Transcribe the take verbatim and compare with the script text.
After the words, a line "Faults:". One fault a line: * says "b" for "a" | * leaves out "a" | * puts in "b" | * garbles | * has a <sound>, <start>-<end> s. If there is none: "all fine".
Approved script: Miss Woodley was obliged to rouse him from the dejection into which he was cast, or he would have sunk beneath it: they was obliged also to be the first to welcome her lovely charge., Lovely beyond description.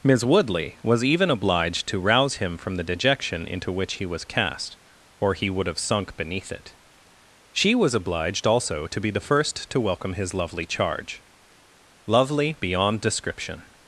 Miss Woodley was even obliged to rouse him from the dejection into which he was cast, or he would have sunk beneath it: she was obliged also to be the first to welcome his lovely charge., Lovely beyond description.
Faults:
* puts in "even"
* says "she" for "they"
* says "his" for "her"